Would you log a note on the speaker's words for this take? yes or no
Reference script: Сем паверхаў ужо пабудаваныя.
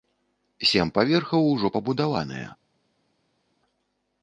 no